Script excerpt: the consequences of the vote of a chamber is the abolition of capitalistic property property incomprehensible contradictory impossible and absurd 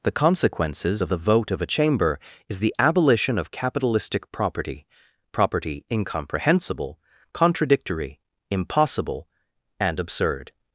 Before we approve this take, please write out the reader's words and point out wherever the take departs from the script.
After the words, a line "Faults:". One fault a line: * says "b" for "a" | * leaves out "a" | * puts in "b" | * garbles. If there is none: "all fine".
the consequences of the vote of a chamber is the abolition of capitalistic property property incomprehensible contradictory impossible and absurd
Faults:
all fine